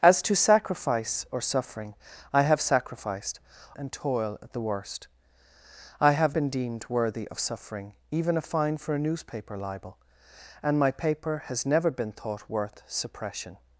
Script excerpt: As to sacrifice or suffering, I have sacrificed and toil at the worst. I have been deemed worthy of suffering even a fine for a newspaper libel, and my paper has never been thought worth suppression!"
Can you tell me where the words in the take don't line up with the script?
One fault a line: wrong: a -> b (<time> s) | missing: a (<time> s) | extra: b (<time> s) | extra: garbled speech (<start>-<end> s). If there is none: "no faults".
no faults